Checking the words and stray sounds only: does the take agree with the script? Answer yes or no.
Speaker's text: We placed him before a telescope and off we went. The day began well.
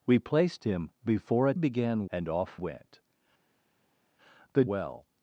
no